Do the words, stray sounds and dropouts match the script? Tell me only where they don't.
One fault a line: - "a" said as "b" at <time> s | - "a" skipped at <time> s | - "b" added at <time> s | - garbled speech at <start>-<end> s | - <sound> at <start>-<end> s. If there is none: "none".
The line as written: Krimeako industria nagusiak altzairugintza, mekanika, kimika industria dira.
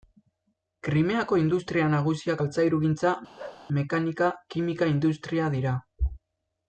- bark at 3.4-3.7 s